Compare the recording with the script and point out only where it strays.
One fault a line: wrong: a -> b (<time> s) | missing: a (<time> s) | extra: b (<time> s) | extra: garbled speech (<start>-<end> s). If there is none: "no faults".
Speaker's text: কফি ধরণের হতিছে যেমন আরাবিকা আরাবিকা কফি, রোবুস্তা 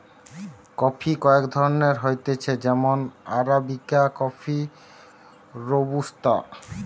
extra: কয়েক (1.2 s)
missing: আরাবিকা (4.0 s)